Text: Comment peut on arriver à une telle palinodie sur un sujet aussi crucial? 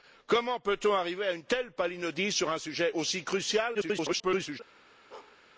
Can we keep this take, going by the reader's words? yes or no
no